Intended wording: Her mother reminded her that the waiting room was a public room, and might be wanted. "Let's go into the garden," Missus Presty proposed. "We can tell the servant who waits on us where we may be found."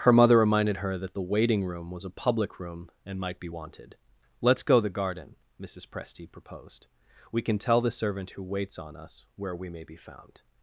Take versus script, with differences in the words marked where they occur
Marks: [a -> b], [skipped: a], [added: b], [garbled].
Her mother reminded her that the waiting room was a public room, and might be wanted. "Let's go [skipped: into] the garden," Missus Presty proposed. "We can tell the servant who waits on us where we may be found."